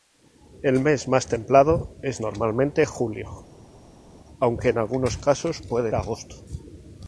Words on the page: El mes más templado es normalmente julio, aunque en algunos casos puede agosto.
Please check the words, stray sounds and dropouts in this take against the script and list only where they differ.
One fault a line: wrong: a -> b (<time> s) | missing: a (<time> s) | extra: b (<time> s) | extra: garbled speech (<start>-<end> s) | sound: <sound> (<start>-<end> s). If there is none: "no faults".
no faults